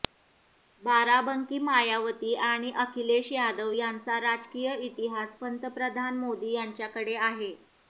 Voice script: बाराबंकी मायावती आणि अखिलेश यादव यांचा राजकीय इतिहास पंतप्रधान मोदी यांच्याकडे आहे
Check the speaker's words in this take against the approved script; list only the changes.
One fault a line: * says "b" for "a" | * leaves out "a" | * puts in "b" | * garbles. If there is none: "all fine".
all fine